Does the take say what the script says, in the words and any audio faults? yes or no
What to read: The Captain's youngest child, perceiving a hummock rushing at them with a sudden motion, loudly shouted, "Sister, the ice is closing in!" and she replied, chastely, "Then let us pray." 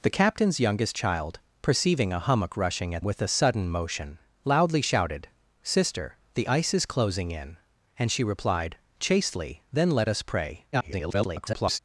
no